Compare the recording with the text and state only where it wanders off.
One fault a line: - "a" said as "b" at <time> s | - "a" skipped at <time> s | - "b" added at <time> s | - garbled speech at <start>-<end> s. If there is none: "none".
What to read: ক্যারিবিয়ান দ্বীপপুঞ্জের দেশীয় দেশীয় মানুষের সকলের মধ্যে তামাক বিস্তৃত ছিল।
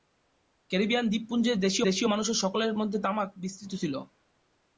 none